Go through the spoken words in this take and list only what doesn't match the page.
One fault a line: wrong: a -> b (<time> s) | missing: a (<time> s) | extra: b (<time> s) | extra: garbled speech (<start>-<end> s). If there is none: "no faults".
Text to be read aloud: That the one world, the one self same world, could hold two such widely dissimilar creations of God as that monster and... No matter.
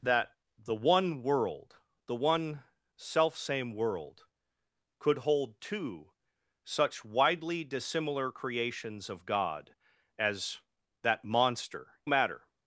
missing: and No (12.0 s)